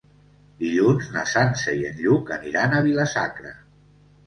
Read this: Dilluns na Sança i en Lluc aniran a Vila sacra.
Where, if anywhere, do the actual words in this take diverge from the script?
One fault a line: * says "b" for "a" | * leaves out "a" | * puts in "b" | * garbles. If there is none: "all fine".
all fine